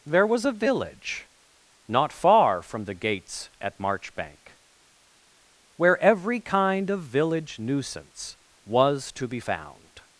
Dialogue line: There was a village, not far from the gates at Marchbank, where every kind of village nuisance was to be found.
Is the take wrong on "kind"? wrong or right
right